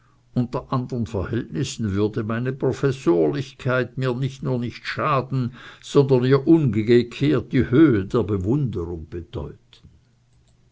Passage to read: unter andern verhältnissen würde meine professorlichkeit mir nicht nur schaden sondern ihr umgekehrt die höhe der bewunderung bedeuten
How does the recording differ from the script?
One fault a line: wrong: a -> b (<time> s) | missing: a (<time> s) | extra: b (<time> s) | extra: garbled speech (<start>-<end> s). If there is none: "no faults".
extra: nicht (4.5 s)